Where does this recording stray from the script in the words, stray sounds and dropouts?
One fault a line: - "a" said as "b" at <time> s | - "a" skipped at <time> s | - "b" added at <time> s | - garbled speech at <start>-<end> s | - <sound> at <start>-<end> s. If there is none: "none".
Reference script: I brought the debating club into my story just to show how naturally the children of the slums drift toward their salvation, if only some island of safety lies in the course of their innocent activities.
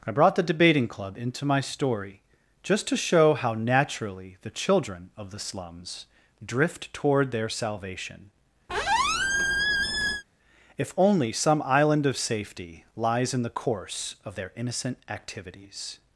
- squeak at 8.7-10.2 s